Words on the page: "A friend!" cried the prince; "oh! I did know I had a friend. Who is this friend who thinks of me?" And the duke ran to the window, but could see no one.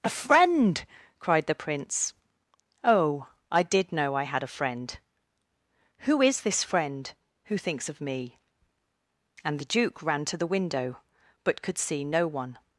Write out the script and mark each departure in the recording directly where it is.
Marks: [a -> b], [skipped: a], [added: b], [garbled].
"A friend!" cried the prince; "oh! I did know I had a friend. Who is this friend who thinks of me?" And the duke ran to the window, but could see no one.